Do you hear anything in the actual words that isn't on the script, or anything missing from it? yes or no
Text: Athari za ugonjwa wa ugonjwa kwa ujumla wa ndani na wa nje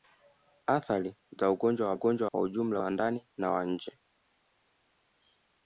no